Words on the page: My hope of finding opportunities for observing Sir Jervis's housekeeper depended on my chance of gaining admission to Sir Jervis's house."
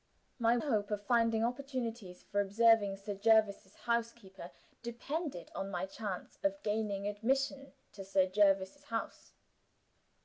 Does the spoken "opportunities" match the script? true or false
true